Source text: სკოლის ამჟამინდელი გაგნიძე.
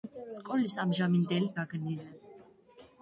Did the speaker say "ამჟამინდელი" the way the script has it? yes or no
yes